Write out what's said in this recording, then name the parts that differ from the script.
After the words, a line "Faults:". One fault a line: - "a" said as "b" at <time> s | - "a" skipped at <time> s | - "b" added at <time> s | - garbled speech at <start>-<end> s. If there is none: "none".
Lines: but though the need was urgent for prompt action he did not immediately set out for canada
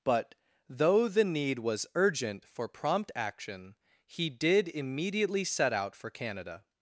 but though the need was urgent for prompt action he did immediately set out for canada
Faults:
- "not" skipped at 4.7 s